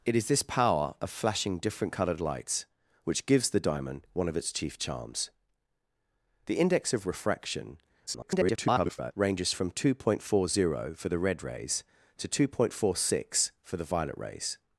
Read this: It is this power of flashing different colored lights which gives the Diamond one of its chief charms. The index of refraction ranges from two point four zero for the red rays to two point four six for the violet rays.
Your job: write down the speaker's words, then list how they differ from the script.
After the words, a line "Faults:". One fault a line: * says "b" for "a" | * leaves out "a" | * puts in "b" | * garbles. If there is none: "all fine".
It is this power of flashing different colored lights which gives the Diamond one of its chief charms. The index of refraction [garbled] ranges from two point four zero for the red rays to two point four six for the violet rays.
Faults:
* garbles